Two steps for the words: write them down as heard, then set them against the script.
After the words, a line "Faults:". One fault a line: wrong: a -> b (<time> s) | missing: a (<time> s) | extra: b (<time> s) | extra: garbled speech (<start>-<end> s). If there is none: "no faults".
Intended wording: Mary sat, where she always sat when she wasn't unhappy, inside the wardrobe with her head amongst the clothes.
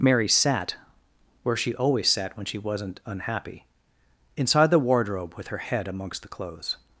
Mary sat, where she always sat when she wasn't unhappy, inside the wardrobe with her head amongst the clothes.
Faults:
no faults